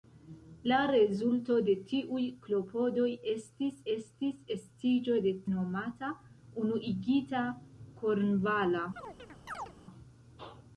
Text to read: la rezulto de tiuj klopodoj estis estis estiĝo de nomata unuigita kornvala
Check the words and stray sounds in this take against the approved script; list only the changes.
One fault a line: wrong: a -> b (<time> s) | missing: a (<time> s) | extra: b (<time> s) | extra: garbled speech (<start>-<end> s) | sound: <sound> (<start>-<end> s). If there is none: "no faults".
sound: chirp (9.0-9.8 s)